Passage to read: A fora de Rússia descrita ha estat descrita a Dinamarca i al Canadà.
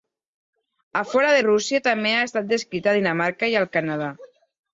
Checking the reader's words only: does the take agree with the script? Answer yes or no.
no